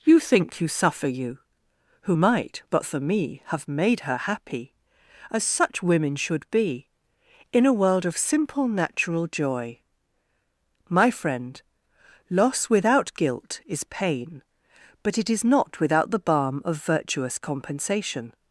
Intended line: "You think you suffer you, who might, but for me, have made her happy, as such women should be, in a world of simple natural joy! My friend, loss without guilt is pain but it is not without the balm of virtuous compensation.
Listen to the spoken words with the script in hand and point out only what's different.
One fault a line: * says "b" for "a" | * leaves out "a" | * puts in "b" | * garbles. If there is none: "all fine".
all fine